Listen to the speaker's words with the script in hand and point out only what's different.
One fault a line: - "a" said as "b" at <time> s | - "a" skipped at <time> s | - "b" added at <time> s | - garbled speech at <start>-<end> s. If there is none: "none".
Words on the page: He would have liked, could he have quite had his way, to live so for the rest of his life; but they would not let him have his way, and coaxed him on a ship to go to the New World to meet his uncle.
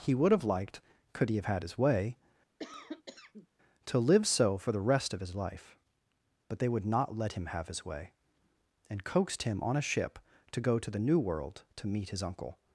- "quite" skipped at 1.4 s